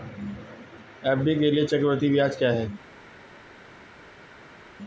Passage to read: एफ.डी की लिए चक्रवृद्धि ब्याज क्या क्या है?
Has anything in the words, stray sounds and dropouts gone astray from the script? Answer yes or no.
yes